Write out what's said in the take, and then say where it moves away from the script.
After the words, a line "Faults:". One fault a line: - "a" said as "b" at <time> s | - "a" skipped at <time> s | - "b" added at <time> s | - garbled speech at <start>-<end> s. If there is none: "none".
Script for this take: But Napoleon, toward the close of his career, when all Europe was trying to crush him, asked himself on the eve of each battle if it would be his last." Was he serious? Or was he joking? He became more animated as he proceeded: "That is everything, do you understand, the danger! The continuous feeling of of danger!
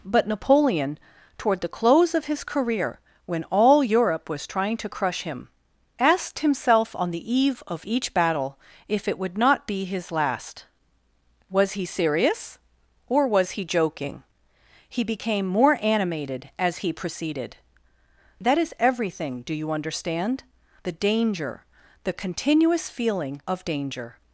But Napoleon, toward the close of his career, when all Europe was trying to crush him, asked himself on the eve of each battle if it would not be his last." Was he serious? Or was he joking? He became more animated as he proceeded: "That is everything, do you understand, the danger! The continuous feeling of danger!
Faults:
- "not" added at 9.4 s
- "of" skipped at 23.7 s